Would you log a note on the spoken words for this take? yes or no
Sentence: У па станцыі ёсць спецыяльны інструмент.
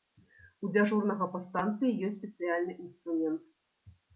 yes